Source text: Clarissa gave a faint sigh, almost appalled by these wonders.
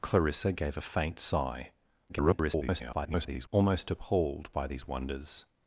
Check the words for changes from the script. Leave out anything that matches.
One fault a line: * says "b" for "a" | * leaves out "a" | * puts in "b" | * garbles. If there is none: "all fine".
* garbles